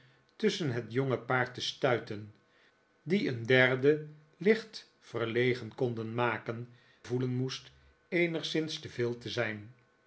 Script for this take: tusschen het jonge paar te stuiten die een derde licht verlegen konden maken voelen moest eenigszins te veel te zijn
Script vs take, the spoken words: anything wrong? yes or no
no